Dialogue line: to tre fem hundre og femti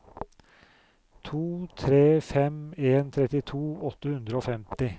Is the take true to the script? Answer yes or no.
no